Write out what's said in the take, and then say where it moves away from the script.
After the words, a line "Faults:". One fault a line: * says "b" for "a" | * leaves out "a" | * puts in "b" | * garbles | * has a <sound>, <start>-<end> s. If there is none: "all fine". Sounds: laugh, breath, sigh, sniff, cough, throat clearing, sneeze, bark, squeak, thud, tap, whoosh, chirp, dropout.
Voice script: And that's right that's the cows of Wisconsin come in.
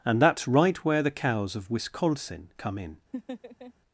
And that's right where the cows of Wisconsin come in.
Faults:
* says "where" for "that's"
* has a laugh, 3.1-3.7 s